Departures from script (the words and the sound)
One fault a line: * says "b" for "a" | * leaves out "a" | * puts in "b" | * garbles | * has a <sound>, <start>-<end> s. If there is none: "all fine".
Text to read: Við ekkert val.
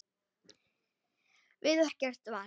all fine